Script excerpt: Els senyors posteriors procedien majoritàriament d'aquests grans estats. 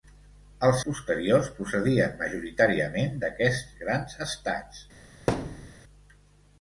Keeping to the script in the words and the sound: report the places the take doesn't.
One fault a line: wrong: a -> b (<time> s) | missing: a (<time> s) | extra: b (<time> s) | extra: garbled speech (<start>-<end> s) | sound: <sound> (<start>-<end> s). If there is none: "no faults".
missing: senyors (0.8 s)
sound: thud (5.3-5.8 s)